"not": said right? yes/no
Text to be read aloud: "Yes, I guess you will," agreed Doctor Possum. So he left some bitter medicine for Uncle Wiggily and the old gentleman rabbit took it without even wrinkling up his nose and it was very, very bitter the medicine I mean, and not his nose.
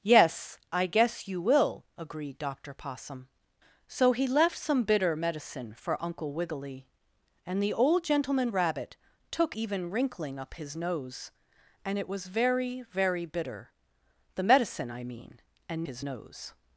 no